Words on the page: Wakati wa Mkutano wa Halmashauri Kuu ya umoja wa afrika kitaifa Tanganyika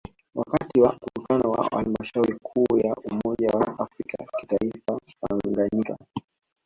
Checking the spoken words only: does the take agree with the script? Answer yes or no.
yes